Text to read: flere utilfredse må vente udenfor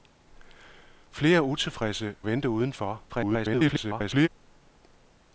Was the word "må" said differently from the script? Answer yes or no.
yes